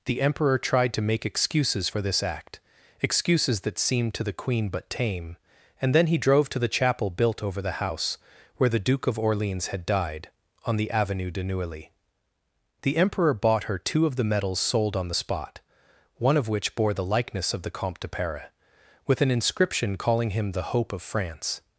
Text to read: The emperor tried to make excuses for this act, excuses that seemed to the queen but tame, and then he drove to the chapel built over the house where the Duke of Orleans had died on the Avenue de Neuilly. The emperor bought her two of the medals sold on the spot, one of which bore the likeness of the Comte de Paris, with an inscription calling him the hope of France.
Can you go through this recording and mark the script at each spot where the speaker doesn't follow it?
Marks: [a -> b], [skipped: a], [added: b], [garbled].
The emperor tried to make excuses for this act, excuses that seemed to the queen but tame, and then he drove to the chapel built over the house where the Duke of Orleans had died on the Avenue de Neuilly. The emperor bought her two of the medals sold on the spot, one of which bore the likeness of the Comte de Paris, with an inscription calling him the hope of France.